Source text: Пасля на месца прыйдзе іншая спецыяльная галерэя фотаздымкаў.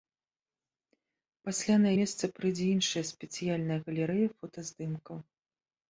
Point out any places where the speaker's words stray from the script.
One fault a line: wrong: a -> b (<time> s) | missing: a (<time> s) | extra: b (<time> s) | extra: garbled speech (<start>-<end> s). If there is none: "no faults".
no faults